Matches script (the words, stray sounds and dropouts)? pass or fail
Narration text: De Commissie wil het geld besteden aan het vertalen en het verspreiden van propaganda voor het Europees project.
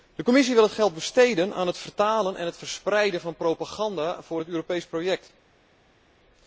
pass